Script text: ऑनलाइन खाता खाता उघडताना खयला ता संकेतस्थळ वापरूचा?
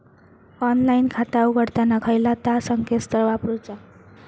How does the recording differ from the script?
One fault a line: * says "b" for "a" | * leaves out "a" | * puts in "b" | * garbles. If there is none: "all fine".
* leaves out "खाता"